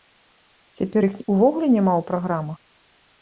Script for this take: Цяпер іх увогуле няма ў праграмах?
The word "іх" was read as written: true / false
true